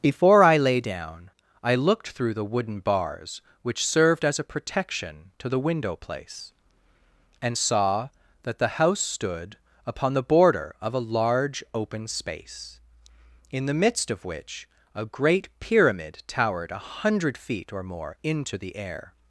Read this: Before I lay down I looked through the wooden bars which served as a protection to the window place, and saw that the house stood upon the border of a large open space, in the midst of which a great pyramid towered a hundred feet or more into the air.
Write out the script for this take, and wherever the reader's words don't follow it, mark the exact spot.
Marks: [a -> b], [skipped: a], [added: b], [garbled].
Before I lay down I looked through the wooden bars which served as a protection to the window place, and saw that the house stood upon the border of a large open space, in the midst of which a great pyramid towered a hundred feet or more into the air.